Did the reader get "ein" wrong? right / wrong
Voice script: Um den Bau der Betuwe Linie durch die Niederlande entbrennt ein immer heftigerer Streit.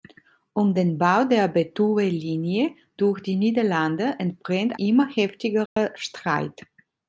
wrong